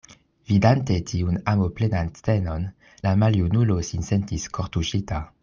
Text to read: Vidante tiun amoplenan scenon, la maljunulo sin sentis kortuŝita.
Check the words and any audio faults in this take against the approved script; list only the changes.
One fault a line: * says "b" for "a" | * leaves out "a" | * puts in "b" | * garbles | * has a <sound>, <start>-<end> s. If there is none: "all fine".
all fine